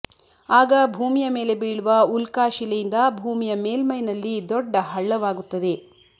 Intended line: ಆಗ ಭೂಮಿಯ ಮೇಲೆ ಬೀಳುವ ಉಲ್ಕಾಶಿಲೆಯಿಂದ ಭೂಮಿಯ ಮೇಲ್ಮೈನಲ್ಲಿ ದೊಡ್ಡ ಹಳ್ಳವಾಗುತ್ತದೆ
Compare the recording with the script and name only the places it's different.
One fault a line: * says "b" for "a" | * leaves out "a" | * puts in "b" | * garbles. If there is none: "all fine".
all fine